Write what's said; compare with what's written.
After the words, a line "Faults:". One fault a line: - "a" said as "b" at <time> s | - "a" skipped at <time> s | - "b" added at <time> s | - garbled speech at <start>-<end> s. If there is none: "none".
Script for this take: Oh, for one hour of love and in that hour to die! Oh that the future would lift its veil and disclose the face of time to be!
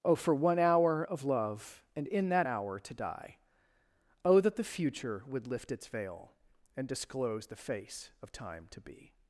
Oh, for one hour of love and in that hour to die! Oh that the future would lift its veil and disclose the face of time to be!
Faults:
none